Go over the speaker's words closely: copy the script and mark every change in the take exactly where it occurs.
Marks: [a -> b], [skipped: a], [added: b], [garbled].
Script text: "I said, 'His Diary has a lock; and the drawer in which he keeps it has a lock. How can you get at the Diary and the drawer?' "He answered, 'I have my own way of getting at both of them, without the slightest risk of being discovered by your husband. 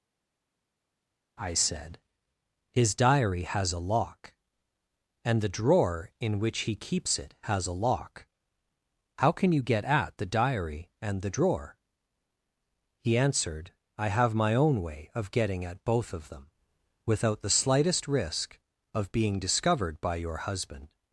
"I said, 'His Diary has a lock; and the drawer in which he keeps it has a lock. How can you get at the Diary and the drawer?' "He answered, 'I have my own way of getting at both of them, without the slightest risk of being discovered by your husband.